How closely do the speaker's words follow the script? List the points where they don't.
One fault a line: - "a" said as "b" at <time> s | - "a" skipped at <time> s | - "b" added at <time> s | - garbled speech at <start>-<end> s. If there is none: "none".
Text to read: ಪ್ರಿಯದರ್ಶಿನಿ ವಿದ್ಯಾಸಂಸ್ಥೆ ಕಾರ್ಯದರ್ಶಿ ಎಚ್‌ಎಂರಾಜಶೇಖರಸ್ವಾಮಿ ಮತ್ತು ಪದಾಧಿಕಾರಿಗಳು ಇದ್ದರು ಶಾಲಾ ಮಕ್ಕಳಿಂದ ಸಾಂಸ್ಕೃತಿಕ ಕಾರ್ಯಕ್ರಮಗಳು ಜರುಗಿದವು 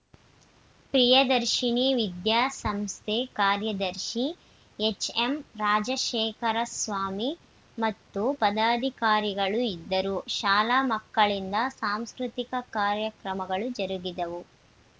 none